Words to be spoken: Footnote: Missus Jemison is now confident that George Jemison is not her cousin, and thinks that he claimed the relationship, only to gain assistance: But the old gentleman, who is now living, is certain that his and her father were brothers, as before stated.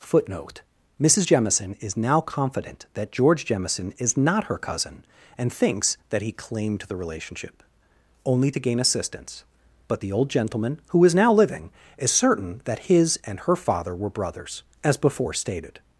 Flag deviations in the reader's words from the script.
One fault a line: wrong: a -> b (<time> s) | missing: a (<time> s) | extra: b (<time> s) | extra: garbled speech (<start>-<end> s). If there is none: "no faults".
no faults